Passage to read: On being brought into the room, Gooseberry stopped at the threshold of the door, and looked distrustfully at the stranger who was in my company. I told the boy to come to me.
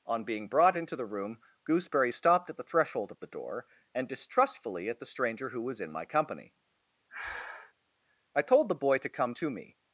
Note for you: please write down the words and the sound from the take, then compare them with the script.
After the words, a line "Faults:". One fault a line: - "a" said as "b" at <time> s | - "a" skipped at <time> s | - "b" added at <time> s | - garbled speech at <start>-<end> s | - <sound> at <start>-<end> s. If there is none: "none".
On being brought into the room, Gooseberry stopped at the threshold of the door, and distrustfully at the stranger who was in my company. I told the boy to come to me.
Faults:
- "looked" skipped at 4.1 s
- breath at 7.1-7.7 s